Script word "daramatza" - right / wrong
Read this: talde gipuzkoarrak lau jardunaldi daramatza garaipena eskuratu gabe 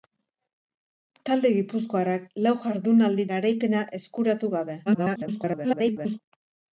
wrong